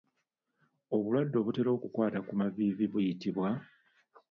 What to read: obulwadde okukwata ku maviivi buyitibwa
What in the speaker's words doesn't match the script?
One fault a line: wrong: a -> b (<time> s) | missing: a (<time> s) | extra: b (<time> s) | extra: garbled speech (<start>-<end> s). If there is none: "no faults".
extra: obutera (1.4 s)